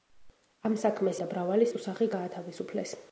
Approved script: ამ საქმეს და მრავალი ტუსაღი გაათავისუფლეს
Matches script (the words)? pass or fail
pass